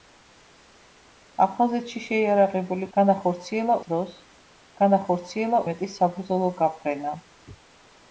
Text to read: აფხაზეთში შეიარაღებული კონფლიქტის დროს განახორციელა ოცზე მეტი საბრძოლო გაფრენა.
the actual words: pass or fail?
fail